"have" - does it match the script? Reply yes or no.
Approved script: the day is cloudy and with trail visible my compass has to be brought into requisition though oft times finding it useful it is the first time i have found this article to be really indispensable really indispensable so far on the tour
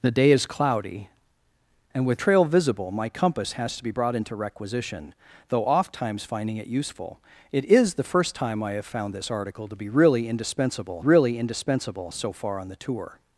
yes